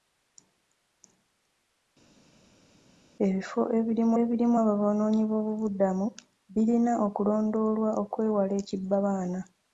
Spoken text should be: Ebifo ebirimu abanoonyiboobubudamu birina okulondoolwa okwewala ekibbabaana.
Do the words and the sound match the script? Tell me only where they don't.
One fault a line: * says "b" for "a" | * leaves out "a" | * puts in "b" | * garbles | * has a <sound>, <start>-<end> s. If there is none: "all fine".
* puts in "ebirimu"